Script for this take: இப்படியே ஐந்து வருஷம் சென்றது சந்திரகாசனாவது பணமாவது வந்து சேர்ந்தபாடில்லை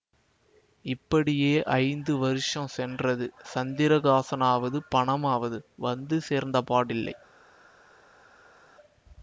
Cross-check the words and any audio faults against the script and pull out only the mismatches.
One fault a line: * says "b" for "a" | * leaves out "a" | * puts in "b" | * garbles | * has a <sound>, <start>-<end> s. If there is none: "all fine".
all fine